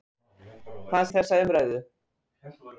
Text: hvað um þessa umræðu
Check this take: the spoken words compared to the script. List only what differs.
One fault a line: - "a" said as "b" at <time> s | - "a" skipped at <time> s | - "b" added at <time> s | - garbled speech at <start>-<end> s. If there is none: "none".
none